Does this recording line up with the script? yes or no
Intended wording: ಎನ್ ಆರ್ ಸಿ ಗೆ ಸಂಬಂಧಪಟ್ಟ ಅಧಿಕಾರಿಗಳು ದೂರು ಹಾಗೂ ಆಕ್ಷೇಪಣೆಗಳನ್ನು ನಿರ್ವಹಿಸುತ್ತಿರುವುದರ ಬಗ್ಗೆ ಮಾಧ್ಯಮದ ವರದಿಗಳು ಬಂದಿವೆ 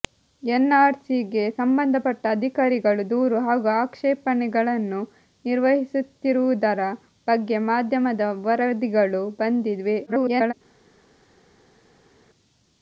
no